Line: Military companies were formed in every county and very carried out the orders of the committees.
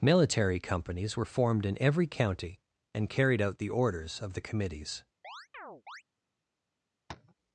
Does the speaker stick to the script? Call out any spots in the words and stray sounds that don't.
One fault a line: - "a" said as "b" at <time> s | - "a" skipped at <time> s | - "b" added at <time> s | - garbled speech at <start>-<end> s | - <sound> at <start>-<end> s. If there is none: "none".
- "very" skipped at 3.1 s
- chirp at 5.2-6.0 s
- tap at 7.1-7.3 s